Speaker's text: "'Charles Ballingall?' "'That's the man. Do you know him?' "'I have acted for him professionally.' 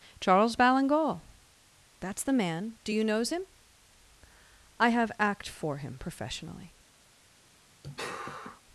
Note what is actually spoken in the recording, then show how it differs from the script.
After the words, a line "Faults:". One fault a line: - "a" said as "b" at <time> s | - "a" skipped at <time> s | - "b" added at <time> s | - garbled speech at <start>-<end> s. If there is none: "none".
"'Charles Ballingall?' "'That's the man. Do you knows him?' "'I have act for him professionally.'
Faults:
- "know" said as "knows" at 3.0 s
- "acted" said as "act" at 5.2 s